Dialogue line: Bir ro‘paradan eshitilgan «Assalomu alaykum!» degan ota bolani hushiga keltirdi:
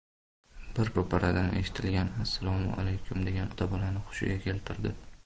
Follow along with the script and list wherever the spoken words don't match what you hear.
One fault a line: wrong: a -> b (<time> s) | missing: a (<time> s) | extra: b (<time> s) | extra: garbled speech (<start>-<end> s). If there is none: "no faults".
no faults